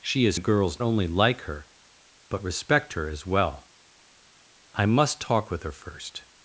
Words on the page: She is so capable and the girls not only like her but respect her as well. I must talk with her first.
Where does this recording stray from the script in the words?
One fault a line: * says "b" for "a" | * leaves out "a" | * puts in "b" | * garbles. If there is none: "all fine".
* leaves out "so capable and"
* leaves out "not"